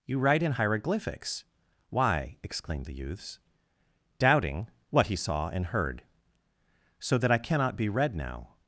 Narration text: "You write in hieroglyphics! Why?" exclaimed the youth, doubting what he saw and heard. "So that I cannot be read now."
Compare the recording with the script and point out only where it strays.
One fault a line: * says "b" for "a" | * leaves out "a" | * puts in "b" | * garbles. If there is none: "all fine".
* says "youths" for "youth"